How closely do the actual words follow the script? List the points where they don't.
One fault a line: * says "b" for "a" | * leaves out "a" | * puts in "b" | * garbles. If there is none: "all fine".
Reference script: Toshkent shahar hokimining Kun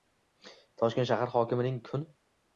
all fine